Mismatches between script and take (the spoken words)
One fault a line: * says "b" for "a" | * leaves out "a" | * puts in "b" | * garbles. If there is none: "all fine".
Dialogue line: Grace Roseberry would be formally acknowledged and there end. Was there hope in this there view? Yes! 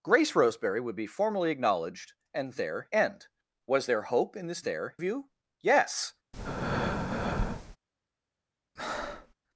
all fine